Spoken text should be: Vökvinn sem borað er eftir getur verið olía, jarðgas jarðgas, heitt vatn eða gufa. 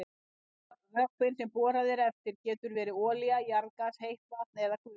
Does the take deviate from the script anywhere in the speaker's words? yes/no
yes